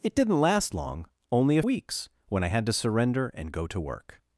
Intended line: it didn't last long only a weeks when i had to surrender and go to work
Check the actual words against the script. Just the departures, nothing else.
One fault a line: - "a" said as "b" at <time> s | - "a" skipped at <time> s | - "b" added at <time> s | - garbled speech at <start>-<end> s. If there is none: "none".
none